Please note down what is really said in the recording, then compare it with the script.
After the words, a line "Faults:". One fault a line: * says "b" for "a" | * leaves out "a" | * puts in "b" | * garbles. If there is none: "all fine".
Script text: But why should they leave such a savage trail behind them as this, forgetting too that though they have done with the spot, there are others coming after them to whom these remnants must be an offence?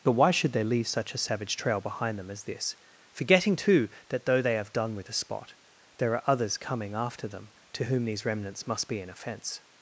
But why should they leave such a savage trail behind them as this, forgetting too that though they have done with the spot, there are others coming after them to whom these remnants must be an offence?
Faults:
all fine